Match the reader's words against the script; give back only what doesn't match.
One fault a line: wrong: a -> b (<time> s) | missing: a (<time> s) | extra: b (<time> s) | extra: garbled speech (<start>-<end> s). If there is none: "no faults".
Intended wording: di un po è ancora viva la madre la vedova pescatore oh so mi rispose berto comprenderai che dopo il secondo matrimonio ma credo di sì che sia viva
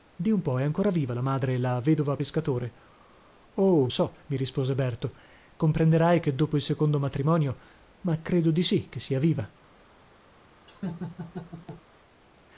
no faults